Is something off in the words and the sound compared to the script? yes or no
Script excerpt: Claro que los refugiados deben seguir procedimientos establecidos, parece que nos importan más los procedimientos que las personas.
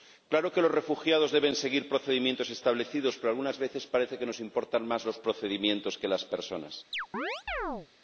yes